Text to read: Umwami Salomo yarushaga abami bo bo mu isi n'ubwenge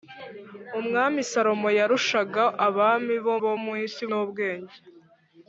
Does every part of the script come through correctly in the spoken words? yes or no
yes